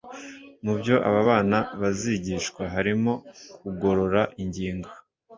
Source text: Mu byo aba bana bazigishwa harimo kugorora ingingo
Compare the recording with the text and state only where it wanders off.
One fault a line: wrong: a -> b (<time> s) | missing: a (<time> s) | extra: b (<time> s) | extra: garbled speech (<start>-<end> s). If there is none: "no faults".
no faults